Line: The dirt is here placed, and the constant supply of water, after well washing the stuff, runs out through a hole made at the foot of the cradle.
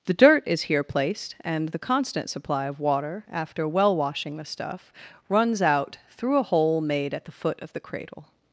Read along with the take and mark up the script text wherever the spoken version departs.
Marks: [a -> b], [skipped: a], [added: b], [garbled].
The dirt is here placed, and the constant supply of water, after well washing the stuff, runs out through a hole made at the foot of the cradle.